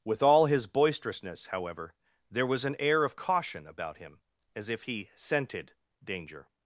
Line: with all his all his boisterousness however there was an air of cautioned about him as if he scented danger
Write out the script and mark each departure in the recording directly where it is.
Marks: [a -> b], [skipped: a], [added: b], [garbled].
with all his [skipped: all his] boisterousness however there was an air of [cautioned -> caution] about him as if he scented danger